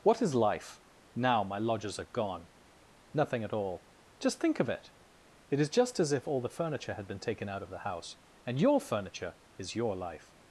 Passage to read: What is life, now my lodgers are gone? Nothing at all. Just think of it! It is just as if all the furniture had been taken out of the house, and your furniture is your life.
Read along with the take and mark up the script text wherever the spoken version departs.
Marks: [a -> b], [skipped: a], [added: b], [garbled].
What is life, now my lodgers are gone? Nothing at all. Just think of it! It is just as if all the furniture had been taken out of the house, and your furniture is your life.